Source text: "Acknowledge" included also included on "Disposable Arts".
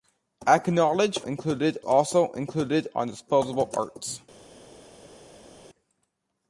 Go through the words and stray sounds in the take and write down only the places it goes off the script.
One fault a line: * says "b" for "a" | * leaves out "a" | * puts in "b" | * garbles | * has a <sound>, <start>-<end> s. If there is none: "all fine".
all fine